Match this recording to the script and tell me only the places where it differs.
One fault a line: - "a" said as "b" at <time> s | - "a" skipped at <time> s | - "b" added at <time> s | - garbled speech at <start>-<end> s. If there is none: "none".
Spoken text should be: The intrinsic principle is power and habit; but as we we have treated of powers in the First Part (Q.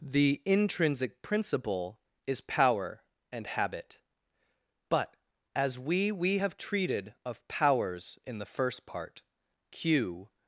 none